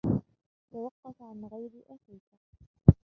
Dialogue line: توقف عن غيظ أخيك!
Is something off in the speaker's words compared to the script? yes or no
no